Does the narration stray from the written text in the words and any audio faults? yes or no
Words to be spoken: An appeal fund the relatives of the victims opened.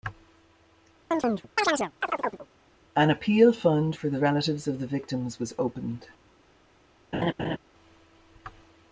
yes